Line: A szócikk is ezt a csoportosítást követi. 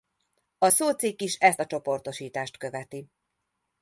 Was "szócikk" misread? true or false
false